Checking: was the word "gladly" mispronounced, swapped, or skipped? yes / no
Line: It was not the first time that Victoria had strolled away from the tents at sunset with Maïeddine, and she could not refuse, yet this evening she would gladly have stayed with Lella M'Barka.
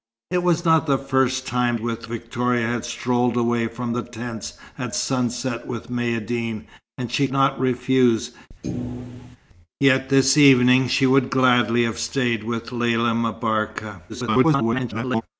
no